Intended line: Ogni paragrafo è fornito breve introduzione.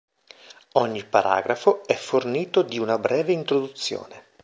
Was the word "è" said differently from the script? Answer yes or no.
no